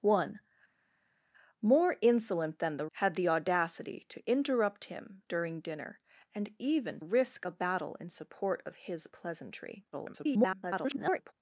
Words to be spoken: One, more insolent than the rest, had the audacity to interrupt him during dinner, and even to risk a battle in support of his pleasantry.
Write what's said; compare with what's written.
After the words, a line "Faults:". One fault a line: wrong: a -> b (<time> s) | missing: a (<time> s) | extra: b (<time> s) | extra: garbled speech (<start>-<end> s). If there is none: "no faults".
One, more insolent than the had the audacity to interrupt him during dinner, and even risk a battle in support of his pleasantry. [garbled]
Faults:
missing: rest (2.9 s)
missing: to (7.0 s)
extra: garbled speech (9.9-11.3 s)